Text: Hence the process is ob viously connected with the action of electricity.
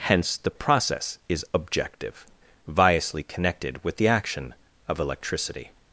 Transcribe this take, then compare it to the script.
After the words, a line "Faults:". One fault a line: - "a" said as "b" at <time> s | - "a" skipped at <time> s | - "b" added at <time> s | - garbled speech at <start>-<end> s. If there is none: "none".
Hence the process is objective viously connected with the action of electricity.
Faults:
- "ob" said as "objective" at 1.5 s